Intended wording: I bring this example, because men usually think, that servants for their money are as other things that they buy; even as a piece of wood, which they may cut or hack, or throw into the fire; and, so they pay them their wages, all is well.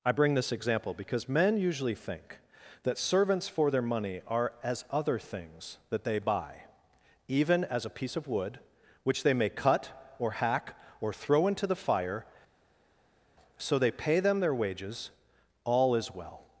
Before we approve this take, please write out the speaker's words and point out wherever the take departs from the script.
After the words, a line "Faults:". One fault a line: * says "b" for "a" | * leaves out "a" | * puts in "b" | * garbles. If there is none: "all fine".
I bring this example, because men usually think, that servants for their money are as other things that they buy; even as a piece of wood, which they may cut or hack, or throw into the fire; so they pay them their wages, all is well.
Faults:
* leaves out "and"